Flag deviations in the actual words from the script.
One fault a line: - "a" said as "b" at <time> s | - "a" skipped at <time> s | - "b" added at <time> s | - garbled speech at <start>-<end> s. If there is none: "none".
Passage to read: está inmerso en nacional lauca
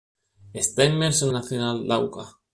none